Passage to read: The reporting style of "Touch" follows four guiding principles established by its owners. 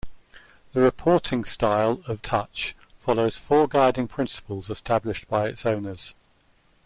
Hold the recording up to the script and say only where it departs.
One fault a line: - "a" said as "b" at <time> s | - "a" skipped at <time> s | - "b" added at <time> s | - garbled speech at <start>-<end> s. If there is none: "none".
none